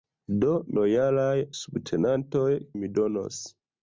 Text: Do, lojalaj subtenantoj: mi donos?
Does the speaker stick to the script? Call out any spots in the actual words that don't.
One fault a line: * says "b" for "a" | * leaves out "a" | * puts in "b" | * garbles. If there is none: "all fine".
all fine